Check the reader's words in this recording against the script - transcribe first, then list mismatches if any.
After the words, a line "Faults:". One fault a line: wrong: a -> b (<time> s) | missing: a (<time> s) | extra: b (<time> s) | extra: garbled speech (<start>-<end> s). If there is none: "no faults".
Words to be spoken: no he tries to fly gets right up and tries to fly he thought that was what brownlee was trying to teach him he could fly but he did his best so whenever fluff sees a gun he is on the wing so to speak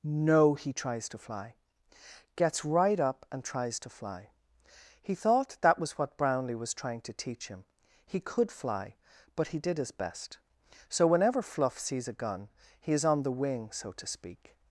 no he tries to fly gets right up and tries to fly he thought that was what brownlee was trying to teach him he could fly but he did his best so whenever fluff sees a gun he is on the wing so to speak
Faults:
no faults